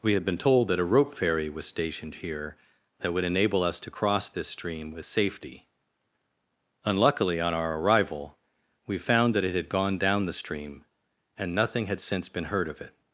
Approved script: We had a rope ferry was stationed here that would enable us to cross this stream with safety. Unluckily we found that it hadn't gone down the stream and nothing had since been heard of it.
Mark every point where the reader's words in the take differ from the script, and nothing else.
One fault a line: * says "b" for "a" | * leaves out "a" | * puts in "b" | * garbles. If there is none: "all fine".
* puts in "been told that"
* puts in "on our arrival"
* says "had" for "hadn't"